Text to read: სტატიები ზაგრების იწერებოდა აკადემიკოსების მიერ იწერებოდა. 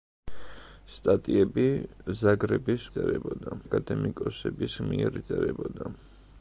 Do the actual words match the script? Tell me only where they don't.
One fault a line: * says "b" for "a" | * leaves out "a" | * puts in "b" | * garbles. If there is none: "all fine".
all fine